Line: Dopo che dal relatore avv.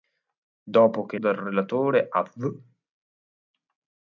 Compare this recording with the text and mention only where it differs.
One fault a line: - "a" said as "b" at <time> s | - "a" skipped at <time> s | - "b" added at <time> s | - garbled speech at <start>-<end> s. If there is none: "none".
none